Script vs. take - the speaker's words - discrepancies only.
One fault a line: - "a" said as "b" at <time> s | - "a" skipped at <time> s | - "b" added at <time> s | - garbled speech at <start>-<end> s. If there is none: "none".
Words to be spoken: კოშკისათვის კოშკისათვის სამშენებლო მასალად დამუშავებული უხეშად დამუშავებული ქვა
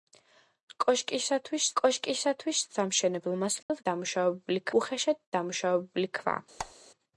none